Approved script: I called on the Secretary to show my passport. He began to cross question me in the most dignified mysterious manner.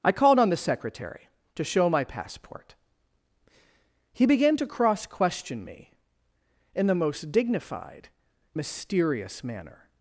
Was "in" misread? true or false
false